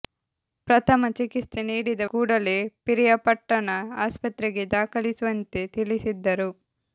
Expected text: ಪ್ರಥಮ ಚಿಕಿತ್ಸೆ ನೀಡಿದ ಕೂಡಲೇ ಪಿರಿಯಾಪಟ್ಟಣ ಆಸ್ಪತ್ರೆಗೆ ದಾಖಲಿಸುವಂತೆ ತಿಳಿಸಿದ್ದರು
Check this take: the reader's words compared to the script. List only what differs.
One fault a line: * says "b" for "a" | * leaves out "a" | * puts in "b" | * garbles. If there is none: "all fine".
all fine